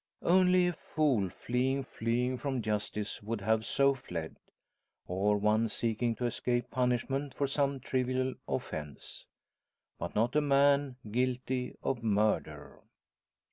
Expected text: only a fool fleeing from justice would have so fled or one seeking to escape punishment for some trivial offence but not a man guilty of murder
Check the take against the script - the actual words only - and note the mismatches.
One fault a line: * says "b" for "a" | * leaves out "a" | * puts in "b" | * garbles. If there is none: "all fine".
* puts in "fleeing"